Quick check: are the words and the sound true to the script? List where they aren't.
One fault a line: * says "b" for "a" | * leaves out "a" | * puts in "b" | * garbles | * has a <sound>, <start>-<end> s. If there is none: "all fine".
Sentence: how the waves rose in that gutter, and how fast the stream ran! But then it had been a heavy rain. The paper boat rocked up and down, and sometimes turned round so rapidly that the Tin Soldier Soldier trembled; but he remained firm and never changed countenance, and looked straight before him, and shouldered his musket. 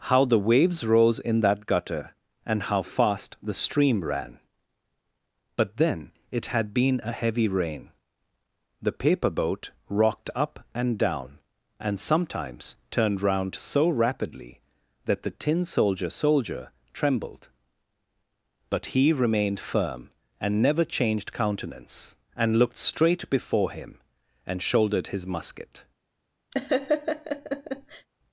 * has a laugh, 26.5-28.1 s